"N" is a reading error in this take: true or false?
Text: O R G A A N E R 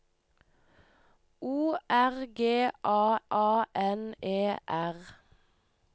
false